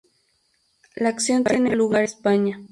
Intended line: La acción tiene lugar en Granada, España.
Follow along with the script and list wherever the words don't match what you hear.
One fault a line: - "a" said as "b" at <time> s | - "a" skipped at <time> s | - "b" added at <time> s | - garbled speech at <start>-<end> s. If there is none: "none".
- "en Granada" skipped at 2.0 s